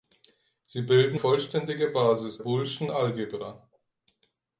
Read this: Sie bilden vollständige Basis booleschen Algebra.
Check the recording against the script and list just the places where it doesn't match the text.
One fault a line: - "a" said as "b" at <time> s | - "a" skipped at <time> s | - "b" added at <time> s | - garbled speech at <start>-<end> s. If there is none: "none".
none